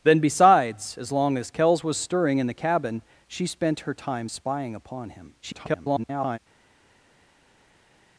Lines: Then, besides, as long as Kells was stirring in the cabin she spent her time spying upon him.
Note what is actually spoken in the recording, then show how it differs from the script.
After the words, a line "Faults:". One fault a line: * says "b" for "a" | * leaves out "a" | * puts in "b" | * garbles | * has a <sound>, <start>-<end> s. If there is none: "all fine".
Then, besides, as long as Kells was stirring in the cabin she spent her time spying upon him. [garbled]
Faults:
* garbles